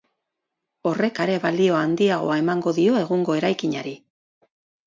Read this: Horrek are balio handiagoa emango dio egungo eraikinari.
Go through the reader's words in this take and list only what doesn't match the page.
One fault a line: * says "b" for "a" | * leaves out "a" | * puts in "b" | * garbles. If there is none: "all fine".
all fine